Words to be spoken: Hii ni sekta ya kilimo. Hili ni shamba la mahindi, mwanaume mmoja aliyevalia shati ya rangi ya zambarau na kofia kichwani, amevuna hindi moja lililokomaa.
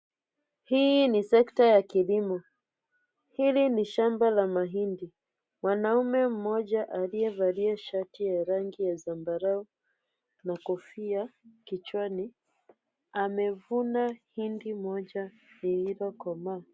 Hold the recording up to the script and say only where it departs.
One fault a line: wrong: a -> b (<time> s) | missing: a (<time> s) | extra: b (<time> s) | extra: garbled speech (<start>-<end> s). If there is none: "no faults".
no faults